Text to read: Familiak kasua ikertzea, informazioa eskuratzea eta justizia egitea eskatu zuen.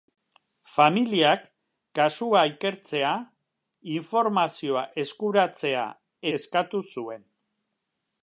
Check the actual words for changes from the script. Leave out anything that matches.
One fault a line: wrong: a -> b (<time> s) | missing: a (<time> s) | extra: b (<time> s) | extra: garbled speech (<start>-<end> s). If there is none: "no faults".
missing: eta justizia egitea (5.8 s)